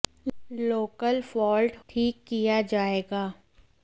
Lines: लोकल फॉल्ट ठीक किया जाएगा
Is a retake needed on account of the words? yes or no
no